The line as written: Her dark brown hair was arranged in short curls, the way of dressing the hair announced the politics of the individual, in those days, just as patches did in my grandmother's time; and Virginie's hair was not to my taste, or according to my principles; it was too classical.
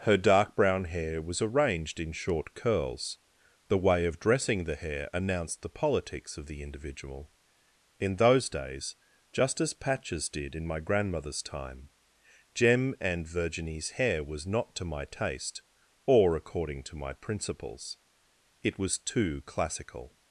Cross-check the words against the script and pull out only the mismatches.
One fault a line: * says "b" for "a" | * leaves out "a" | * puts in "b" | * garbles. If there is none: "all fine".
* puts in "jem"